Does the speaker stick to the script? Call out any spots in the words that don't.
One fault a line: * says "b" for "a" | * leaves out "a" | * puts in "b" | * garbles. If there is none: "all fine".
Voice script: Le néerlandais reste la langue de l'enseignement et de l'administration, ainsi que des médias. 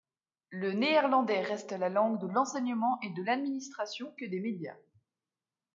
* leaves out "ainsi"